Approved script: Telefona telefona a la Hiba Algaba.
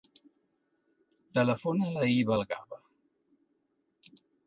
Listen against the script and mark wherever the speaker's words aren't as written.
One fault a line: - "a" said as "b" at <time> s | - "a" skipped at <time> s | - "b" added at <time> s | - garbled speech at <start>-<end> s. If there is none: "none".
- "telefona" skipped at 1.9 s